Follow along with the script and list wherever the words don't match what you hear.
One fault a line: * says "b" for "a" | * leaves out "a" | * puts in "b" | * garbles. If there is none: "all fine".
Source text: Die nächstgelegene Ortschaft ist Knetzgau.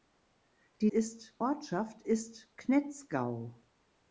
* says "ist" for "nächstgelegene"